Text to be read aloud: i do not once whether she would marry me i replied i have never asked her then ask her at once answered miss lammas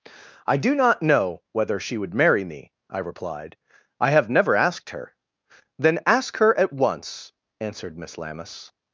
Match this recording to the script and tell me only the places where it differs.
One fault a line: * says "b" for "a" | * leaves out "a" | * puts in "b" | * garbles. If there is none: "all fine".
* says "know" for "once"